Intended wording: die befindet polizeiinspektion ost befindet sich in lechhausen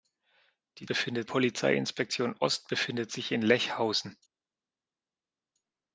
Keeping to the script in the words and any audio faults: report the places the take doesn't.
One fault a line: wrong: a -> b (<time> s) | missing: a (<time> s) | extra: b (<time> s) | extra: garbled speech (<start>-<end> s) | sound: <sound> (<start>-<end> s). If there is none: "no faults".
no faults